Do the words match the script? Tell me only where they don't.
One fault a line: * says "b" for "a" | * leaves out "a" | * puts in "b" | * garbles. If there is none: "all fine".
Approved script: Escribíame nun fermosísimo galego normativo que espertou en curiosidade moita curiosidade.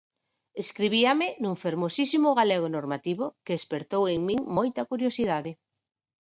* says "min" for "curiosidade"